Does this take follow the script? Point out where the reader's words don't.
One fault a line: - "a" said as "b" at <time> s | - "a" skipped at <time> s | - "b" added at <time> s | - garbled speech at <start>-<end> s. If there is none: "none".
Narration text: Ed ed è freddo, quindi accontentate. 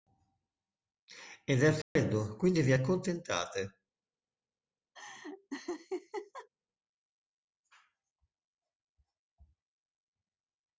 - "ed" skipped at 1.6 s
- "vi" added at 2.6 s